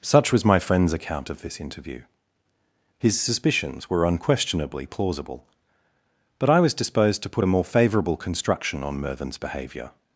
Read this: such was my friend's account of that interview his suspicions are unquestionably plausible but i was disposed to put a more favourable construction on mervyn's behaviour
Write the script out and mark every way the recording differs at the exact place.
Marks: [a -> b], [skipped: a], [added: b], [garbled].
such was my friend's account of [that -> this] interview his suspicions [are -> were] unquestionably plausible but i was disposed to put a more favourable construction on mervyn's behaviour